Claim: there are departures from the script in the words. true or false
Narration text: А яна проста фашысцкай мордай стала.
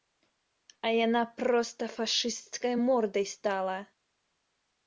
false